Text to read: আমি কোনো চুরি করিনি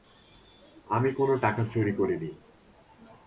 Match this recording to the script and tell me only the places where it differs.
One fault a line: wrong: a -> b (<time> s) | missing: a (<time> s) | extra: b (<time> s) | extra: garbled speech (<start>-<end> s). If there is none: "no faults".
extra: টাকা (1.4 s)